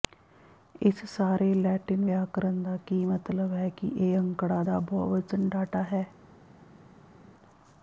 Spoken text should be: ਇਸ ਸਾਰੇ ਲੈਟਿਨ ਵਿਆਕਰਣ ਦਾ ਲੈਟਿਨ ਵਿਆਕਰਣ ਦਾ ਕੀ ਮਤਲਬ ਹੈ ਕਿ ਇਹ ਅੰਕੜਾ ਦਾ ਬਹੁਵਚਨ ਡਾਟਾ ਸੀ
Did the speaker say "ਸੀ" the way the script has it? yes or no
no